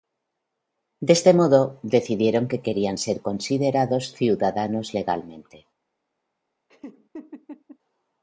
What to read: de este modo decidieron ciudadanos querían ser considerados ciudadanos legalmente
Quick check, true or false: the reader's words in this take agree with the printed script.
false